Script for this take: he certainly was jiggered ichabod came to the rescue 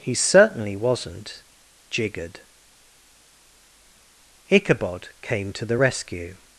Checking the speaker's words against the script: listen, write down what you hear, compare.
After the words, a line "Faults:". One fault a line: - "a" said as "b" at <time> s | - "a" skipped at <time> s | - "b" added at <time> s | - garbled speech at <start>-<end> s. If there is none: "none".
he certainly wasn't jiggered ichabod came to the rescue
Faults:
- "was" said as "wasn't" at 0.8 s